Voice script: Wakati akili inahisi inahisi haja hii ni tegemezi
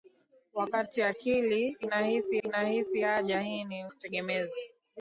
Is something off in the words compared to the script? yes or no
no